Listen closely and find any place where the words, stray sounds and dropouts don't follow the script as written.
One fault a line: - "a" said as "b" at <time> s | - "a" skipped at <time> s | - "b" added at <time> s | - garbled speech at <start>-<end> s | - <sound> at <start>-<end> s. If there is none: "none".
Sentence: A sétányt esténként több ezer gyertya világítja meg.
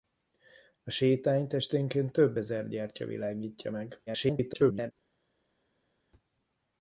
- garbled speech at 4.1-4.9 s